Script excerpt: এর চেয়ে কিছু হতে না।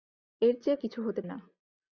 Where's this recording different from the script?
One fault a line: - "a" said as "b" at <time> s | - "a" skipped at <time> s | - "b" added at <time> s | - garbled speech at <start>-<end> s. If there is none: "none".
none